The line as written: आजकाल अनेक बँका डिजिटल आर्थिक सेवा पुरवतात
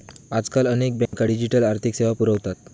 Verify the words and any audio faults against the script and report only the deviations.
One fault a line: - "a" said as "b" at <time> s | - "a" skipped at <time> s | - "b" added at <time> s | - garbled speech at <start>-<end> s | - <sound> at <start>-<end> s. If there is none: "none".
- dropout at 1.1-1.1 s